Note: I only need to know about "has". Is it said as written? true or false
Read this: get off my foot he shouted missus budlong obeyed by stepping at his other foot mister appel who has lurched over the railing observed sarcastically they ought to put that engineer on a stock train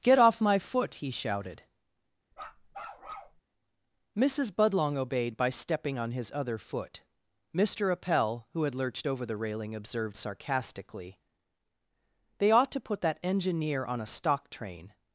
false